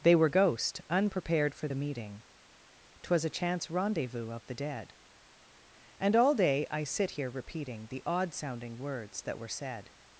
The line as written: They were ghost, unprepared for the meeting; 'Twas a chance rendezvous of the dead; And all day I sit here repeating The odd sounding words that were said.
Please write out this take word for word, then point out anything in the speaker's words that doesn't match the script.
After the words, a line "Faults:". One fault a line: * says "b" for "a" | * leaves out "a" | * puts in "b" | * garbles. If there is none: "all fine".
They were ghost, unprepared for the meeting; 'Twas a chance rendezvous of the dead; And all day I sit here repeating The odd sounding words that were said.
Faults:
all fine